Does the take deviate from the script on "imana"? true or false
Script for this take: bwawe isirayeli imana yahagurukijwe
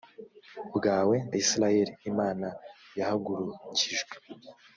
false